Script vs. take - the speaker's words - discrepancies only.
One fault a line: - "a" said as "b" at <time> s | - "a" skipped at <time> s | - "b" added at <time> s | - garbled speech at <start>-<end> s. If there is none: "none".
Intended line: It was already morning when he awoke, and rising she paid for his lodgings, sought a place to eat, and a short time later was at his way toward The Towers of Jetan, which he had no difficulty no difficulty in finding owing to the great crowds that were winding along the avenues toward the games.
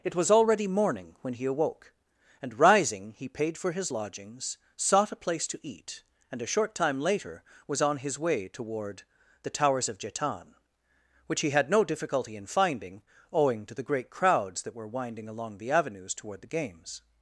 - "she" said as "he" at 3.1 s
- "at" said as "on" at 7.8 s
- "no difficulty" skipped at 12.4 s